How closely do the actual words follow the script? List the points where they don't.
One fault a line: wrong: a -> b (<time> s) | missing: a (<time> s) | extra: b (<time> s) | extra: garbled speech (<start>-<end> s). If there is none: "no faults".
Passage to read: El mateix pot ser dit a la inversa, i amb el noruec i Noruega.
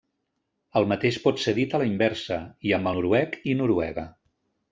missing: el (2.9 s)